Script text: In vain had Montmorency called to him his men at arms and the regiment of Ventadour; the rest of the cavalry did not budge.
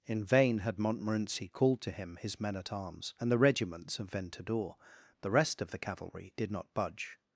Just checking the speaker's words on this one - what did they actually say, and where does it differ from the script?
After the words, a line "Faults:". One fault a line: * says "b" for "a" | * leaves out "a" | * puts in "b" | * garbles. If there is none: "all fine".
In vain had Montmorency called to him his men at arms and the regiments of Ventadour; the rest of the cavalry did not budge.
Faults:
* says "regiments" for "regiment"